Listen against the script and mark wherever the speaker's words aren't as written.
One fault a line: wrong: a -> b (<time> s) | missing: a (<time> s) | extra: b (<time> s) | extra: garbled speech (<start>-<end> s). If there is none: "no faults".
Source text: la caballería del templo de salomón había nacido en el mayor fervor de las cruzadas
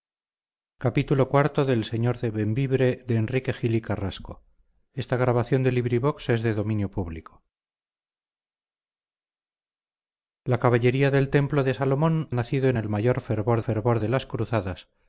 missing: había (12.3 s)
extra: fervor (13.6 s)